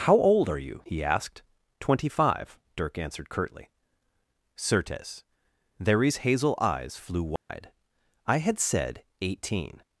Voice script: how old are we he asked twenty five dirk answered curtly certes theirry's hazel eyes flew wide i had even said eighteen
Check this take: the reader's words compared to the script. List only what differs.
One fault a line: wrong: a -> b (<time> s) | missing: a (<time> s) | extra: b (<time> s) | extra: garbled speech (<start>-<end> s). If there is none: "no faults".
wrong: we -> you (0.6 s)
missing: even (8.6 s)